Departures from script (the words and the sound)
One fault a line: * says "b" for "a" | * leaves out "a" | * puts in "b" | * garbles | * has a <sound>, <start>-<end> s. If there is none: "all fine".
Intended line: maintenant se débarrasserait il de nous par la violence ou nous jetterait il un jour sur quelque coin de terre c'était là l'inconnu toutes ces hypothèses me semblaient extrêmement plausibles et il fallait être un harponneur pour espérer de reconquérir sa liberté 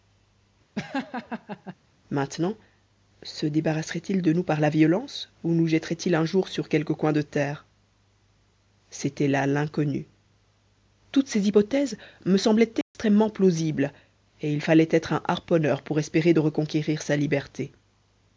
* has a laugh, 0.8-1.8 s
* has a dropout, 12.8-12.9 s